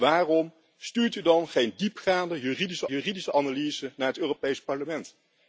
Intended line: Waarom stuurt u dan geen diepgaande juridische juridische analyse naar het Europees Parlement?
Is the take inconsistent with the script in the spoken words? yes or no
no